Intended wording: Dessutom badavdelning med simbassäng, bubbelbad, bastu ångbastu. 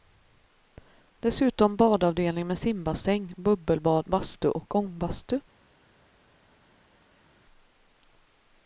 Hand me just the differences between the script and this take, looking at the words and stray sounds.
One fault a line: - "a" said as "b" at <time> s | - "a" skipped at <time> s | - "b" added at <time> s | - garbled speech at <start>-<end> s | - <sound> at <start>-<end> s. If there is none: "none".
- "och" added at 4.5 s